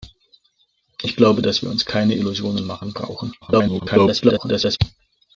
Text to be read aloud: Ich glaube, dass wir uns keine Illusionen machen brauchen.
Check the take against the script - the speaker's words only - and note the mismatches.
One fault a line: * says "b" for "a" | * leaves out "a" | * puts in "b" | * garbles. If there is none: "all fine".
* garbles